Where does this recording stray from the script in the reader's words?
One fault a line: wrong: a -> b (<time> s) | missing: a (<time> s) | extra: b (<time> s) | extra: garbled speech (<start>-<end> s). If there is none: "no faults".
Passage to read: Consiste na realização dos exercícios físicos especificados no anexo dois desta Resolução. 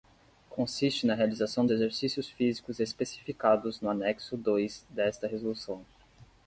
missing: dos (1.7 s)